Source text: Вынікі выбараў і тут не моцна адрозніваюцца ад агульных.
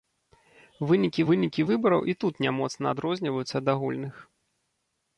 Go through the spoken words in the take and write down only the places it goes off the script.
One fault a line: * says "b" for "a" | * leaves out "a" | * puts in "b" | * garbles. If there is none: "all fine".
* puts in "вынікі"